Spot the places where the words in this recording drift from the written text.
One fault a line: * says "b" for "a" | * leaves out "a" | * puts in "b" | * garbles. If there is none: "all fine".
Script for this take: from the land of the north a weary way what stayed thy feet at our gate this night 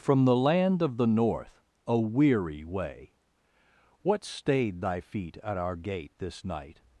all fine